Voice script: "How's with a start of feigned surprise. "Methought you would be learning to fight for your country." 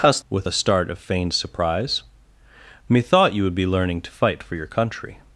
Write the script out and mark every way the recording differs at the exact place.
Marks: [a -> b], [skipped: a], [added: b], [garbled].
"How's with a start of feigned surprise. "Methought you would be learning to fight for your country."